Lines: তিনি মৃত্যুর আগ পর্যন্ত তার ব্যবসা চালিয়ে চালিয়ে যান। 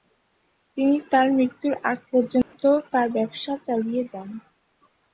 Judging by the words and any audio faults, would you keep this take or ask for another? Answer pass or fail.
fail